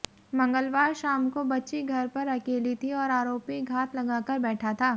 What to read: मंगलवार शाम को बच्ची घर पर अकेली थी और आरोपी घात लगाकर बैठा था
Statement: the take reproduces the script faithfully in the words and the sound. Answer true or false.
true